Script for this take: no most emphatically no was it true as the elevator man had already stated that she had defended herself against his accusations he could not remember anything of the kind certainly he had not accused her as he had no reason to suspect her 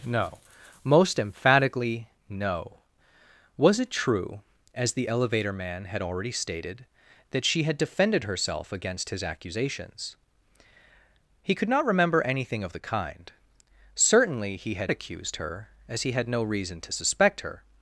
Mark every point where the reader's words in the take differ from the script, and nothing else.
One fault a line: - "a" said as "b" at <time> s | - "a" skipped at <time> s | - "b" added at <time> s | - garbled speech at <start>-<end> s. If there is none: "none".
- "not" skipped at 14.9 s